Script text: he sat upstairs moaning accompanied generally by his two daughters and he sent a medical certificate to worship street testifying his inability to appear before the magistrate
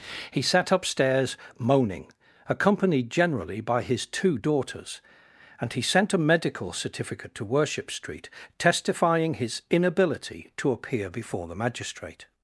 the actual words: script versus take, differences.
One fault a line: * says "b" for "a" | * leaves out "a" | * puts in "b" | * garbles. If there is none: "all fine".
all fine